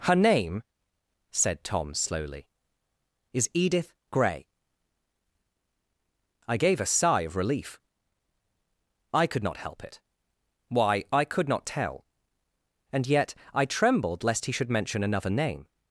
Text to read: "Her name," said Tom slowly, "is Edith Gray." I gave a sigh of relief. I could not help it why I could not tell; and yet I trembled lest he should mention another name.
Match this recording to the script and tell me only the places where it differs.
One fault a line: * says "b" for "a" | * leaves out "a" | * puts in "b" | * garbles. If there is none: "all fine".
all fine